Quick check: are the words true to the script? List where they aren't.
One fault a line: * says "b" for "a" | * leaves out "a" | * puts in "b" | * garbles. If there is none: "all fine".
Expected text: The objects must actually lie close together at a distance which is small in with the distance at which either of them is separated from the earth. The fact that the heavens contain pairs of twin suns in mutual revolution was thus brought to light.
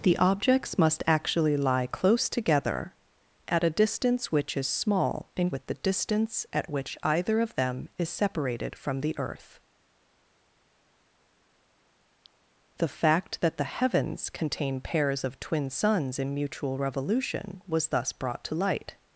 all fine